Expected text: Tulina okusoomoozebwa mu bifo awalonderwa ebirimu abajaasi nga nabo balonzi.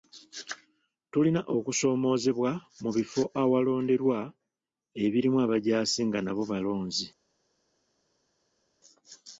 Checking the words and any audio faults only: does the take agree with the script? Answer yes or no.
yes